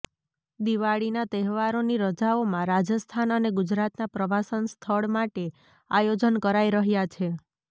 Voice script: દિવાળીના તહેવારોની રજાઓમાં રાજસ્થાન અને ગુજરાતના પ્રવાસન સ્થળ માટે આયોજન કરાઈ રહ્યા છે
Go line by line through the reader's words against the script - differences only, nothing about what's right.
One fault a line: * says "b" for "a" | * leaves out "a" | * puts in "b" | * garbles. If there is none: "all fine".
all fine